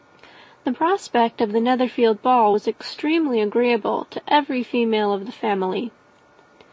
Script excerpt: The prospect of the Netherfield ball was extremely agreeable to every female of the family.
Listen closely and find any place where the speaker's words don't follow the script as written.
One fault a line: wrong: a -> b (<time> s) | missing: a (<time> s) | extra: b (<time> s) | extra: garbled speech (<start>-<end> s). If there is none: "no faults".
no faults